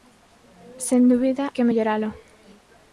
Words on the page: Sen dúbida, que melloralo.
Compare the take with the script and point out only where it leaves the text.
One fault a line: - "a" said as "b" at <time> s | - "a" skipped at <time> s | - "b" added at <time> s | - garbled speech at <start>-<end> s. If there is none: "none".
none